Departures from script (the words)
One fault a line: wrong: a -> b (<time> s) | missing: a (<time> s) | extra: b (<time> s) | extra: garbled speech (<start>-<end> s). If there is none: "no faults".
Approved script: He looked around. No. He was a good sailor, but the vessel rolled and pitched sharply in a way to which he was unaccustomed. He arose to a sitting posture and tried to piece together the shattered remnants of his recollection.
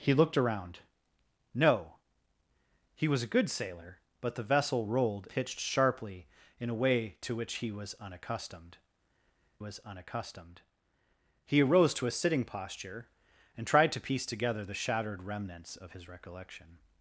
missing: and (5.3 s)
extra: was unaccustomed (9.6 s)